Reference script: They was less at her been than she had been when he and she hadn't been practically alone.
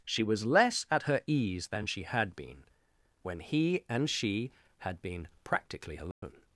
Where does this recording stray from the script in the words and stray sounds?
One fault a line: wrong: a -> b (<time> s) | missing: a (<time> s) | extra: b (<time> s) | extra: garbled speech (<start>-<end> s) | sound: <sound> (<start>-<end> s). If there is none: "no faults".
wrong: They -> She (0.1 s)
wrong: been -> ease (1.3 s)
wrong: hadn't -> had (4.8 s)
sound: dropout (6.1-6.2 s)